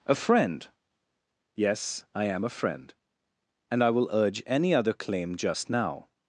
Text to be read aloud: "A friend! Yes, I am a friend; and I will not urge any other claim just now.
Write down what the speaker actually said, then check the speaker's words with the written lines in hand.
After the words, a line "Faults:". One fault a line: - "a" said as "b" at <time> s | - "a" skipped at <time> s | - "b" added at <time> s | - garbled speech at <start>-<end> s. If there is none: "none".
"A friend! Yes, I am a friend; and I will urge any other claim just now.
Faults:
- "not" skipped at 4.1 s